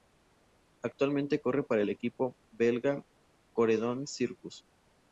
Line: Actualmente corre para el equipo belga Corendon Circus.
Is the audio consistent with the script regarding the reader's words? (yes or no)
yes